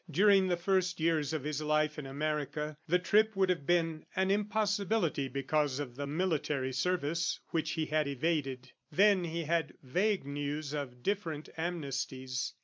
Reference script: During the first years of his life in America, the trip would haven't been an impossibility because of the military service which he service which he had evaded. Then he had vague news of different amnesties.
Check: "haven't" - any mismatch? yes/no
yes